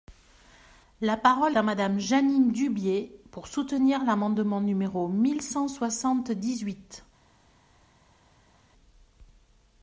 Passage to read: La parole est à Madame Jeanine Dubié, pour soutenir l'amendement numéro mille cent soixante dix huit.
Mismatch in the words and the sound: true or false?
true